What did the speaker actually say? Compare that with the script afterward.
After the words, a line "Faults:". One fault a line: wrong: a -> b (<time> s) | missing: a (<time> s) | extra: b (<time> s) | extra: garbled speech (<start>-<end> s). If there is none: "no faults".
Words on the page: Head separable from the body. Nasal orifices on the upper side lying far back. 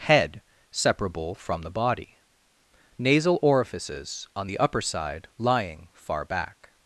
Head separable from the body. Nasal orifices on the upper side lying far back.
Faults:
no faults